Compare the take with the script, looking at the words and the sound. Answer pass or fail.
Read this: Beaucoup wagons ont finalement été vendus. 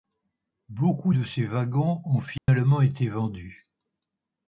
fail